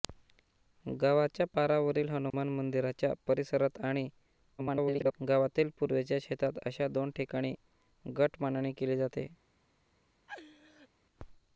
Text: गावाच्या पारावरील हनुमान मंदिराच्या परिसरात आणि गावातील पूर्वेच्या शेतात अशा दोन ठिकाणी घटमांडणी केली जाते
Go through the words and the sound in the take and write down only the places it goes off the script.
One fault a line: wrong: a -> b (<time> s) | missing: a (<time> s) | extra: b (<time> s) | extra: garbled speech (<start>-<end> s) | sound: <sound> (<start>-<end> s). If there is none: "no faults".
sound: dropout (2.3-2.3 s)
extra: garbled speech (4.6-5.1 s)
sound: laugh (10.3-10.9 s)